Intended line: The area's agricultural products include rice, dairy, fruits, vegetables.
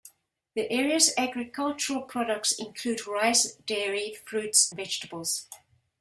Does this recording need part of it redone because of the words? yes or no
no